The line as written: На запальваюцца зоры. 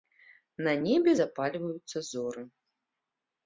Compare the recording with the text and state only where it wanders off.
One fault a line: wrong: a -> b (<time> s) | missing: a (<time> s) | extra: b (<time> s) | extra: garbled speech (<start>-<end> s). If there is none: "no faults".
extra: небе (0.8 s)